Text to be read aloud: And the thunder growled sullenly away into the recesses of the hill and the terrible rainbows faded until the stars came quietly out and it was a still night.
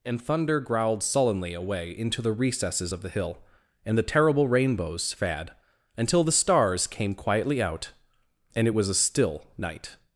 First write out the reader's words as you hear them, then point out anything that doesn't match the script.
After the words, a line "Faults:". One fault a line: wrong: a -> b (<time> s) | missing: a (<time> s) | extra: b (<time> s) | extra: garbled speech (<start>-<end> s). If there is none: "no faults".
And thunder growled sullenly away into the recesses of the hill and the terrible rainbows fad until the stars came quietly out and it was a still night.
Faults:
missing: the (0.2 s)
wrong: faded -> fad (5.1 s)